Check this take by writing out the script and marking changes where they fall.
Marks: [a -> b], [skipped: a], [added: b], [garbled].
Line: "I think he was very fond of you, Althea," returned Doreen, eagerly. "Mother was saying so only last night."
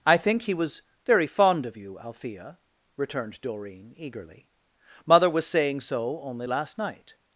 "I think he was very fond of you, Althea," returned Doreen, eagerly. "Mother was saying so only last night."